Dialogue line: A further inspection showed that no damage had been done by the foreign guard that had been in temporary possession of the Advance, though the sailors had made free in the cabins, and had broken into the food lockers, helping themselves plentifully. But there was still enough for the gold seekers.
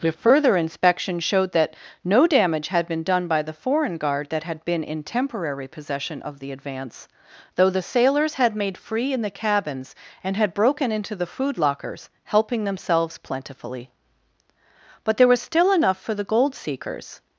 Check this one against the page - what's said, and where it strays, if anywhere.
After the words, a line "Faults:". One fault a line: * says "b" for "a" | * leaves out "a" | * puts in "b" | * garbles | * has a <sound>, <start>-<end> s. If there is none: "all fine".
A further inspection showed that no damage had been done by the foreign guard that had been in temporary possession of the Advance, though the sailors had made free in the cabins, and had broken into the food lockers, helping themselves plentifully. But there was still enough for the gold seekers.
Faults:
all fine